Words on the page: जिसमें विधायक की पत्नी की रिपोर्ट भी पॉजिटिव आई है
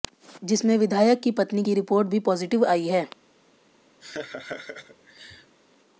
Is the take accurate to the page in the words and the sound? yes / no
no